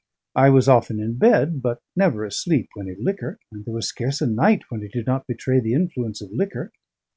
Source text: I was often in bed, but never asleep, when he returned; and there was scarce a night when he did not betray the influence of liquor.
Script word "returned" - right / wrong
wrong